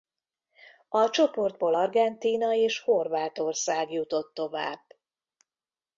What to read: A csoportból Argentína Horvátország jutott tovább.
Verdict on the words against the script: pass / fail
fail